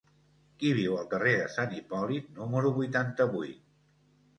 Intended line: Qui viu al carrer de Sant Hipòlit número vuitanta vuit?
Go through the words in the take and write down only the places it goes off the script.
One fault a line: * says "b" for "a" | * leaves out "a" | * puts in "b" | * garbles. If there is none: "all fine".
all fine